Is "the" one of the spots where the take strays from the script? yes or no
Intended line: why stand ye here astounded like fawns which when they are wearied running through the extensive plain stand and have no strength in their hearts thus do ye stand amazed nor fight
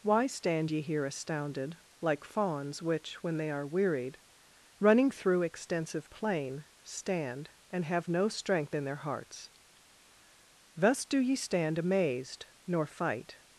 yes